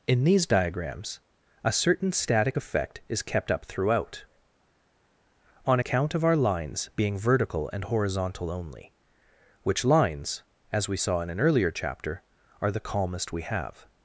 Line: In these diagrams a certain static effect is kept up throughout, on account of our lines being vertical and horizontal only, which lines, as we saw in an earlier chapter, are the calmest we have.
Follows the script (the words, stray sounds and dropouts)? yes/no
yes